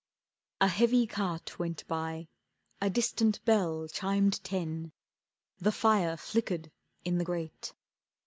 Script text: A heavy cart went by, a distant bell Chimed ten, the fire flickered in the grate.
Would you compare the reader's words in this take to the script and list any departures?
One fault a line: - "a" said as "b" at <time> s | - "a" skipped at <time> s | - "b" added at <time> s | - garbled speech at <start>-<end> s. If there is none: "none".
none